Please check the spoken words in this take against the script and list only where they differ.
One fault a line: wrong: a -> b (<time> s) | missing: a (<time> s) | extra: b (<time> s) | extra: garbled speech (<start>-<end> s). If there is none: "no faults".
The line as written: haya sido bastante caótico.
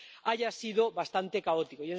no faults